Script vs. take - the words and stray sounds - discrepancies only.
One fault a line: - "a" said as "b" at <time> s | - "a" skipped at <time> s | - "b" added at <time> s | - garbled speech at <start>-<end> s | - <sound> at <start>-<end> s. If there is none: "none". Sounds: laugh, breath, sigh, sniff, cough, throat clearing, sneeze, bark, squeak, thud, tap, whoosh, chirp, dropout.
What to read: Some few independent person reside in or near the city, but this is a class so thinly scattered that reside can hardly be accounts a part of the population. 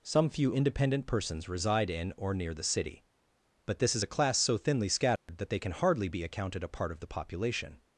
- "person" said as "persons" at 1.1 s
- dropout at 5.2-5.3 s
- "reside" said as "they" at 5.5 s
- "accounts" said as "accounted" at 6.2 s